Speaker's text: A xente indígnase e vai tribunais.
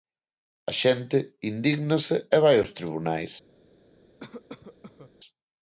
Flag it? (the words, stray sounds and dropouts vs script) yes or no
yes